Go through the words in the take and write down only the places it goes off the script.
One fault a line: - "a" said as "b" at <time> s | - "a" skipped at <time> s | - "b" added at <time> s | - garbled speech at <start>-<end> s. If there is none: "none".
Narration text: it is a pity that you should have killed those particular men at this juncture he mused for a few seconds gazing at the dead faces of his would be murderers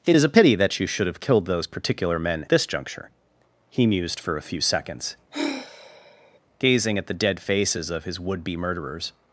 - "at" skipped at 2.4 s